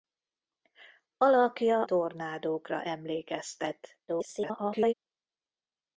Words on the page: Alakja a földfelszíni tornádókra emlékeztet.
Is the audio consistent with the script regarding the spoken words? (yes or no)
no